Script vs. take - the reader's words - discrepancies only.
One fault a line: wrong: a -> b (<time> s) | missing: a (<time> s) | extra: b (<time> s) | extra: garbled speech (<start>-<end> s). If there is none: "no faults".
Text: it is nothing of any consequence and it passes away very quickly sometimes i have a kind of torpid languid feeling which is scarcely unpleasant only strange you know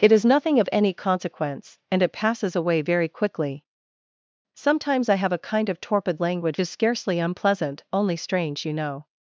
missing: feeling which (6.6 s)